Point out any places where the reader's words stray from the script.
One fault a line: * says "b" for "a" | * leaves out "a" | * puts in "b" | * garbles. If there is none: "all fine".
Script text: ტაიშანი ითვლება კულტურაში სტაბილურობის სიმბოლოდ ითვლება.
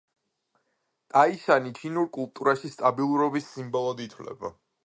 * says "ჩინურ" for "ითვლება"